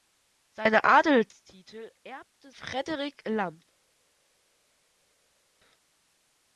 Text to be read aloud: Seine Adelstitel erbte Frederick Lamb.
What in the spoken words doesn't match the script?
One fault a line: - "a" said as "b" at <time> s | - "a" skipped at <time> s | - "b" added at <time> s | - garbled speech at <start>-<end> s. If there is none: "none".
none